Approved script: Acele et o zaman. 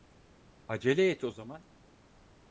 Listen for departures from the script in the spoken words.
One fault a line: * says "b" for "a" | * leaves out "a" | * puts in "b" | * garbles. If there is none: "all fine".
all fine